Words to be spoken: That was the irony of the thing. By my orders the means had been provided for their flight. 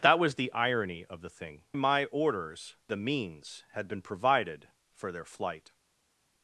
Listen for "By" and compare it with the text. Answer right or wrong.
wrong